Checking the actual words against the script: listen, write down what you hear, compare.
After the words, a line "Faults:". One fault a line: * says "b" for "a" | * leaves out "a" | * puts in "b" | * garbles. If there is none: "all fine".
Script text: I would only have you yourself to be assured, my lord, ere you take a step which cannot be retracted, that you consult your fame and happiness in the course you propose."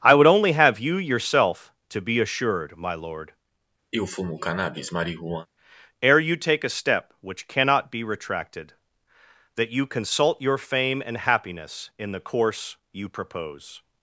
I would only have you yourself to be assured, my lord, ere you take a step which cannot be retracted, that you consult your fame and happiness in the course you propose."
Faults:
all fine